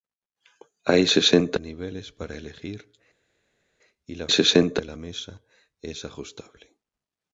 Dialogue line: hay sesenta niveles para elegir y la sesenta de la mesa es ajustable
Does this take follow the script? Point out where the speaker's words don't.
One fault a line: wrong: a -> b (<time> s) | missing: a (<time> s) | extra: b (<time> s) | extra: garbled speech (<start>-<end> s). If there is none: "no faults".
no faults